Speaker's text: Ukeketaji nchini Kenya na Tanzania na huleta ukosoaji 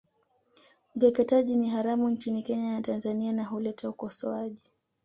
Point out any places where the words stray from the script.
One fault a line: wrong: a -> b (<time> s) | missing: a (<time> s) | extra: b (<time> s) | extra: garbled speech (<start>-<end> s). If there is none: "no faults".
extra: ni haramu (1.6 s)